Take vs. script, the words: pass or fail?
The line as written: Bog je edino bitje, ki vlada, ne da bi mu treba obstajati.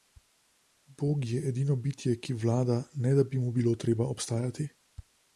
fail